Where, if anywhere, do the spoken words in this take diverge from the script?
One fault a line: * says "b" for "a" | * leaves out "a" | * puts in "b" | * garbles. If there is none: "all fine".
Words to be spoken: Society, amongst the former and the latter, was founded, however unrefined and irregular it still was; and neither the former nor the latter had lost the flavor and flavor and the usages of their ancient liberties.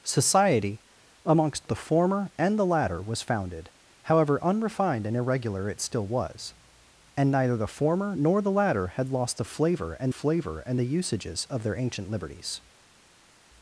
all fine